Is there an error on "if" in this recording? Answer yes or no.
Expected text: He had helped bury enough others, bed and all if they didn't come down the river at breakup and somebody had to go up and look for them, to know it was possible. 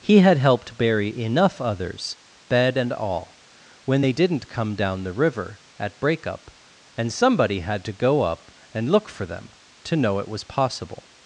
yes